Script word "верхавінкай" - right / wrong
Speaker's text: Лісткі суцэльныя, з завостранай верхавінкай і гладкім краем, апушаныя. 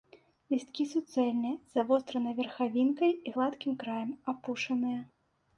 right